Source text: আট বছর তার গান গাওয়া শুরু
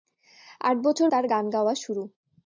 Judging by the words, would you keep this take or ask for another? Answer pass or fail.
pass